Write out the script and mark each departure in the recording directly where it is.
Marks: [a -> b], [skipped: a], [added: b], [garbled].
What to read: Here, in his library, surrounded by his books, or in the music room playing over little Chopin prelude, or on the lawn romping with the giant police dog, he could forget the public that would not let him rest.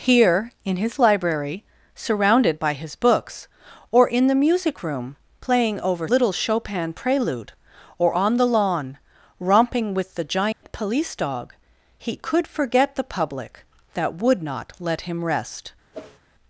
Here, in his library, surrounded by his books, or in the music room playing over little Chopin prelude, or on the lawn romping with the giant police dog, he could forget the public that would not let him rest.